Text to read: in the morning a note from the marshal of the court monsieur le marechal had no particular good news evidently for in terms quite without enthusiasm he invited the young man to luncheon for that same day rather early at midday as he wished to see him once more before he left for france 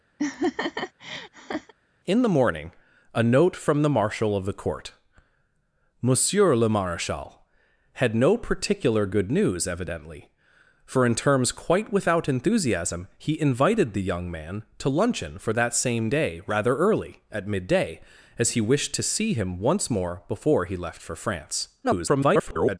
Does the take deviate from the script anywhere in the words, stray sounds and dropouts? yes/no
yes